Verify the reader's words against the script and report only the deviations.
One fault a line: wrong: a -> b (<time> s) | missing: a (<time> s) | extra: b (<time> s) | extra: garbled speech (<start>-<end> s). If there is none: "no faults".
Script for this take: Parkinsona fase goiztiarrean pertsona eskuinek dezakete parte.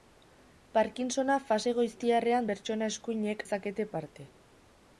no faults